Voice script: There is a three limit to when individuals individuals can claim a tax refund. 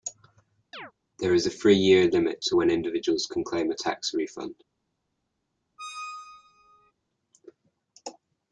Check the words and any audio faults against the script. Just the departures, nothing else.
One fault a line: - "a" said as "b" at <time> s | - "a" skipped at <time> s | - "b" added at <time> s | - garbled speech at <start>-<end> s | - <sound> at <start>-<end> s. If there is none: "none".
- chirp at 0.7-0.9 s
- "year" added at 1.8 s
- "individuals" skipped at 3.3 s
- squeak at 5.8-6.9 s